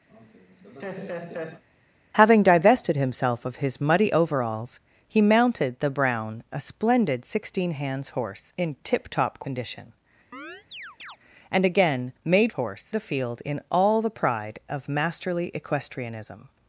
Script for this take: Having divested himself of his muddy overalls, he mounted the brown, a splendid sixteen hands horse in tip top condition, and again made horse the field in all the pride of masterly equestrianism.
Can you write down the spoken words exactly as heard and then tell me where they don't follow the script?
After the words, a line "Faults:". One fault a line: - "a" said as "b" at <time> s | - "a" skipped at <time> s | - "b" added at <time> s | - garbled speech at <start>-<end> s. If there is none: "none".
Having divested himself of his muddy overalls, he mounted the brown, a splendid sixteen hands horse in tip top condition, and again made horse the field in all the pride of masterly equestrianism.
Faults:
none